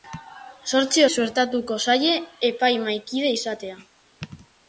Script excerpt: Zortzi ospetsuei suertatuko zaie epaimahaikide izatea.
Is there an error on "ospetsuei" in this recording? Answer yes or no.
yes